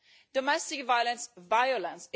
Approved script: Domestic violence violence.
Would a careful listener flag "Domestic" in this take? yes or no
no